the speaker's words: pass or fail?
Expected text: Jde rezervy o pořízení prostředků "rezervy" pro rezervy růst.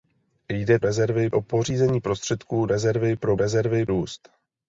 pass